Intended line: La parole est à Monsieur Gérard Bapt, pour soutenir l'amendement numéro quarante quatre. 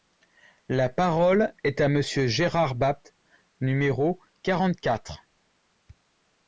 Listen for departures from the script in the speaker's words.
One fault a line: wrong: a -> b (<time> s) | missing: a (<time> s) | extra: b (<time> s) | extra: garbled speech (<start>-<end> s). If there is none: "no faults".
missing: pour soutenir l'amendement (3.1 s)